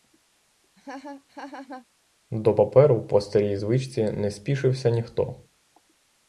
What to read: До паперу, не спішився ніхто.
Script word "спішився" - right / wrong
right